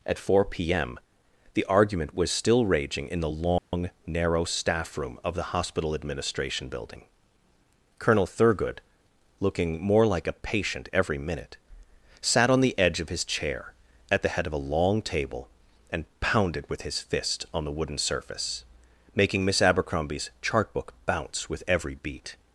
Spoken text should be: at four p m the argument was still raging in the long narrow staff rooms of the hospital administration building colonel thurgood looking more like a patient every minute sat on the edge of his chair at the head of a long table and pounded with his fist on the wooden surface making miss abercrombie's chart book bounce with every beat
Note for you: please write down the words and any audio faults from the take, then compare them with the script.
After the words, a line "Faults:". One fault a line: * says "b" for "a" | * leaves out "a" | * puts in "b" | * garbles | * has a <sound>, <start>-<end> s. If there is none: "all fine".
at four p m the argument was still raging in the long narrow staff room of the hospital administration building colonel thurgood looking more like a patient every minute sat on the edge of his chair at the head of a long table and pounded with his fist on the wooden surface making miss abercrombie's chart book bounce with every beat
Faults:
* has a dropout, 3.6-3.7 s
* says "room" for "rooms"